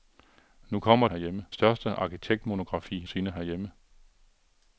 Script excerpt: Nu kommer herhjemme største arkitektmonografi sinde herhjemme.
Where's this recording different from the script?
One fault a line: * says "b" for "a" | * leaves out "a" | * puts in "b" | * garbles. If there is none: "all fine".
all fine